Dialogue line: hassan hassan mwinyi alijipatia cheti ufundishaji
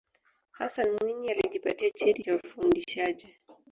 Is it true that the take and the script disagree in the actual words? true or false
true